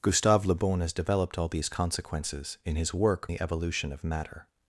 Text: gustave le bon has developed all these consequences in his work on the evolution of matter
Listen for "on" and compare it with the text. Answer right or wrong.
wrong